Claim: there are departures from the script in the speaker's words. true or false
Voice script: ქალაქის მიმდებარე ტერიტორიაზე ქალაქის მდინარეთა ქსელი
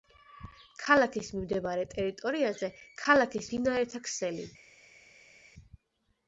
false